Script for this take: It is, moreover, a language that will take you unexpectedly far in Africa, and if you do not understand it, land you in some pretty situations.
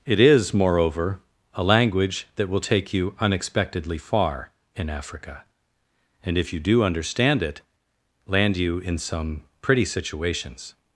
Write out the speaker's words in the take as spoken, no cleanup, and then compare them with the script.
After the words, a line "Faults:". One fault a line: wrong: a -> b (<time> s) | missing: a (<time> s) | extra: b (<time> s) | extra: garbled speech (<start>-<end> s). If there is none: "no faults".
It is, moreover, a language that will take you unexpectedly far in Africa, and if you do understand it, land you in some pretty situations.
Faults:
missing: not (6.8 s)